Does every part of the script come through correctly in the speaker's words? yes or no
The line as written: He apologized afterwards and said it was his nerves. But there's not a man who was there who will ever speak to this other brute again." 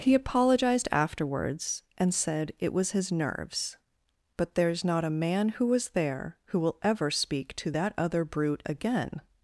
no